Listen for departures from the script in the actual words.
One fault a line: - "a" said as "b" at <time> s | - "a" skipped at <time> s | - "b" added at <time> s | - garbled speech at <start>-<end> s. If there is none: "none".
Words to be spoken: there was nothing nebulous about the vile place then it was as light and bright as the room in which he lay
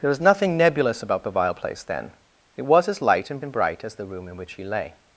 - "and" added at 3.4 s